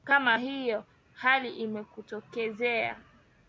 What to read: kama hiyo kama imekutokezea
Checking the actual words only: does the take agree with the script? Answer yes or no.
no